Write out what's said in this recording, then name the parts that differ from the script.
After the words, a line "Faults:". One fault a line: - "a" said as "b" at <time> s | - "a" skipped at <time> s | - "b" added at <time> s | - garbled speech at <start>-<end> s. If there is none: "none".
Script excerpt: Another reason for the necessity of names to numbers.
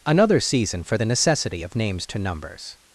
Another season for the necessity of names to numbers.
Faults:
- "reason" said as "season" at 0.4 s